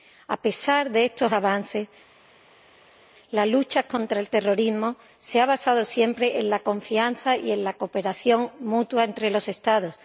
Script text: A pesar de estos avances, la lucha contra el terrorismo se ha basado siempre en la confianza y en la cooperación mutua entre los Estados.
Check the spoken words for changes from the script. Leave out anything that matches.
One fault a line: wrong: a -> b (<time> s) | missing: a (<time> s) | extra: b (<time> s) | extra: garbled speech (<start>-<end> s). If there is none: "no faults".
no faults